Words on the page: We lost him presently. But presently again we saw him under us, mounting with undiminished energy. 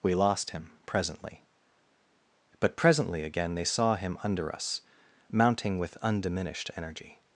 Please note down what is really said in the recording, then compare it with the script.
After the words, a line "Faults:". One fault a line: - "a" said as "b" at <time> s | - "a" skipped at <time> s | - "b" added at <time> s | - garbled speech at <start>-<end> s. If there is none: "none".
We lost him presently. But presently again they saw him under us, mounting with undiminished energy.
Faults:
- "we" said as "they" at 3.5 s